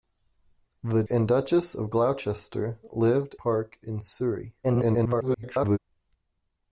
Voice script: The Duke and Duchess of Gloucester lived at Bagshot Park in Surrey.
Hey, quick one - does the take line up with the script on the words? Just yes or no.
no